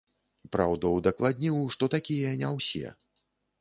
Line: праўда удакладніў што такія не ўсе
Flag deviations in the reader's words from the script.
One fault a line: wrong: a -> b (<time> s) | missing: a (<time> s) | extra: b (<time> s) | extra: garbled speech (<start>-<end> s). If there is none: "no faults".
no faults